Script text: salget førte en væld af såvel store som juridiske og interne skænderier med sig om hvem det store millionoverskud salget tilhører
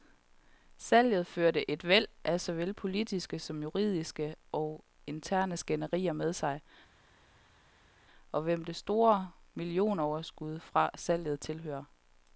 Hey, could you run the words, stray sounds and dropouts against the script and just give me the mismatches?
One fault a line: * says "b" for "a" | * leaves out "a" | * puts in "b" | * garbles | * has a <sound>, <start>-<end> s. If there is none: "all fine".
* says "et" for "en"
* says "politiske" for "store"
* puts in "fra"